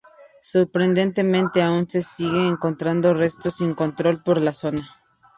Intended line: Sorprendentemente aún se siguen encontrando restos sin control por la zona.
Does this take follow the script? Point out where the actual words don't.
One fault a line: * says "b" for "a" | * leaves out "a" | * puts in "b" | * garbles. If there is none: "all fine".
all fine